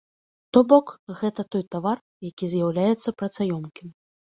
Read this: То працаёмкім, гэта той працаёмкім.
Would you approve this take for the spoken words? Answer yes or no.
no